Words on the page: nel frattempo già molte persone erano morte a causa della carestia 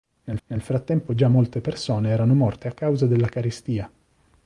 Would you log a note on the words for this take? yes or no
yes